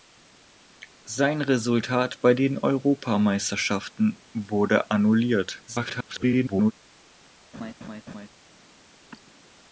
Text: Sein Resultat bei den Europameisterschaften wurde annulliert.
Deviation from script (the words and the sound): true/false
true